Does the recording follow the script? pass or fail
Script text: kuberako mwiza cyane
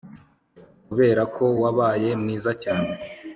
fail